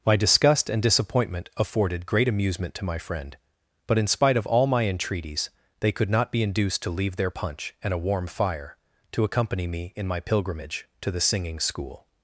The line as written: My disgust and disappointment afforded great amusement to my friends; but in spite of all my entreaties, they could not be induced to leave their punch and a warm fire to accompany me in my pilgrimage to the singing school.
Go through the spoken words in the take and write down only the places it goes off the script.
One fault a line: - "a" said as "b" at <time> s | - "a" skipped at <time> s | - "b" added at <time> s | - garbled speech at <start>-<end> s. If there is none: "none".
- "friends" said as "friend" at 3.0 s